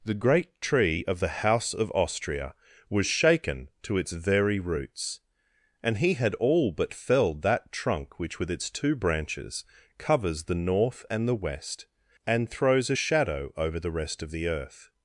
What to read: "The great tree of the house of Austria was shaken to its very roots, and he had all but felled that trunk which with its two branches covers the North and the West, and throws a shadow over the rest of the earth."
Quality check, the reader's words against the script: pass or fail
pass